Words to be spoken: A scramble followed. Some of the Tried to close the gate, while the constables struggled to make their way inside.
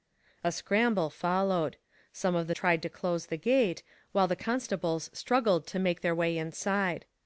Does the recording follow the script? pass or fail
pass